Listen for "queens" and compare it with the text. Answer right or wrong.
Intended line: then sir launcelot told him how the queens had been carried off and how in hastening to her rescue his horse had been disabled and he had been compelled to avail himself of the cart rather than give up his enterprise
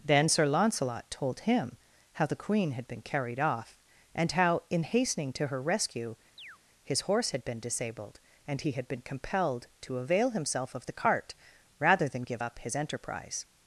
wrong